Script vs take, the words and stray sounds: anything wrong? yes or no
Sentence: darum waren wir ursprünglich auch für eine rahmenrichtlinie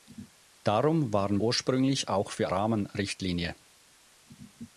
yes